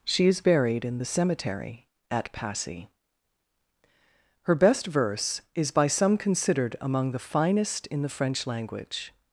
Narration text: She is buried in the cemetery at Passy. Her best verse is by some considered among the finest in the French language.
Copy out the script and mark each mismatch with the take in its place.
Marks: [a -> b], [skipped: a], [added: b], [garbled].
She is buried in the cemetery at Passy. Her best verse is by some considered among the finest in the French language.